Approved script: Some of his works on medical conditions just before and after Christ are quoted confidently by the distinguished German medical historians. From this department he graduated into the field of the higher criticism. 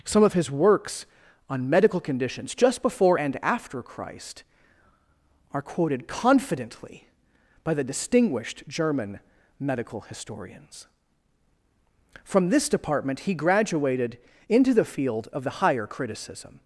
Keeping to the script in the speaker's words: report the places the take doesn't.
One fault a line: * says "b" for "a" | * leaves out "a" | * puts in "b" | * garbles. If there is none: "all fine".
all fine